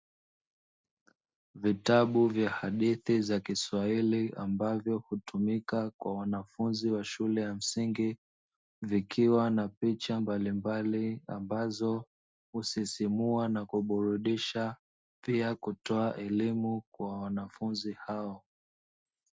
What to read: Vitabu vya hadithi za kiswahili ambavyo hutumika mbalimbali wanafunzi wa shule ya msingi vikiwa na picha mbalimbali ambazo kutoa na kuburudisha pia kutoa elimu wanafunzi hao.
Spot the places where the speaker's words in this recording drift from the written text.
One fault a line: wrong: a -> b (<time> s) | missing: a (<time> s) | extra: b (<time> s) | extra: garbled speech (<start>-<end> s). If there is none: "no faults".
wrong: mbalimbali -> kwa (6.0 s)
wrong: kutoa -> husisimua (12.5 s)
extra: kwa (16.9 s)